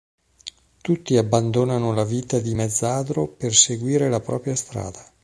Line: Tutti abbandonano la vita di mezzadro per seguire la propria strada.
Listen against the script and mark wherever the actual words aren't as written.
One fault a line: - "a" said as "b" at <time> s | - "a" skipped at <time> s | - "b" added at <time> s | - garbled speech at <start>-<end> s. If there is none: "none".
none